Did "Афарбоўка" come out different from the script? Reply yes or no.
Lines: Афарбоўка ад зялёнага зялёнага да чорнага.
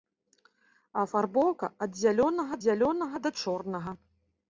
no